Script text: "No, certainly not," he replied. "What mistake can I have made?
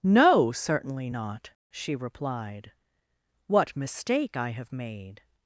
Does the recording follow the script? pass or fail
fail